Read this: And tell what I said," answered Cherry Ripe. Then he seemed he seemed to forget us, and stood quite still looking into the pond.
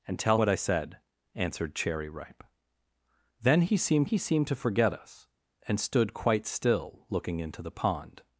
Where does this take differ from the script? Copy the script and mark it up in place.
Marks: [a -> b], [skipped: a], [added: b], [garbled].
And tell what I said," answered Cherry Ripe. Then he seemed he seemed to forget us, and stood quite still looking into the pond.